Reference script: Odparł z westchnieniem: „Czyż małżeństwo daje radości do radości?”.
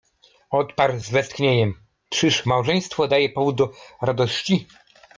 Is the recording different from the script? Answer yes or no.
yes